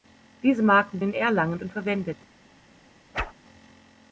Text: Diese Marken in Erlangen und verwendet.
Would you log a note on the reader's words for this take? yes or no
no